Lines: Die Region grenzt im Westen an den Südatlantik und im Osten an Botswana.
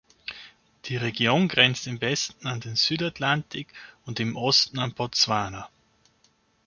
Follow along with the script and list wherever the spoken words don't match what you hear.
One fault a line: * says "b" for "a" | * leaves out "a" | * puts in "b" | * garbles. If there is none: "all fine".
all fine